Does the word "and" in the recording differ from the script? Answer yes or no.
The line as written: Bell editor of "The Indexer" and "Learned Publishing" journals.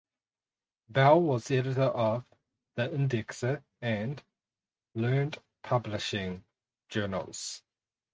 no